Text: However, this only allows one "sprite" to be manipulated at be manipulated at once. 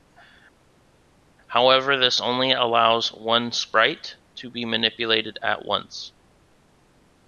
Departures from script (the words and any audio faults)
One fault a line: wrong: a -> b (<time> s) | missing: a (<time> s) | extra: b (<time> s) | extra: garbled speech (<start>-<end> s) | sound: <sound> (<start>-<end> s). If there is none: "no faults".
missing: be manipulated at (5.6 s)